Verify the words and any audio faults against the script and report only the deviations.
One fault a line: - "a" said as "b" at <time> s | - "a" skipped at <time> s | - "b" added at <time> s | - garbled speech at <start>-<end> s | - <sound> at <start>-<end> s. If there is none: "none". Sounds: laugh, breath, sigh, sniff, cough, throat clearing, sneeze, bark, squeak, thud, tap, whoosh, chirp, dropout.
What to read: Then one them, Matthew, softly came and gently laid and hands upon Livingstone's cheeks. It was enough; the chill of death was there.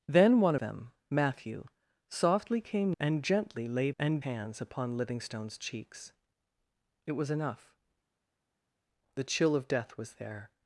none